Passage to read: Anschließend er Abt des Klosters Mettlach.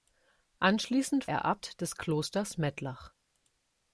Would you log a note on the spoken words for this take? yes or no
no